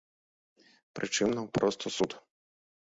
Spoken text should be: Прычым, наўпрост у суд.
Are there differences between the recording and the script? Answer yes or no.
no